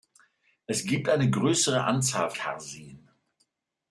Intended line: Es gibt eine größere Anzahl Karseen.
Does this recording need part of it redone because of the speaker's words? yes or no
no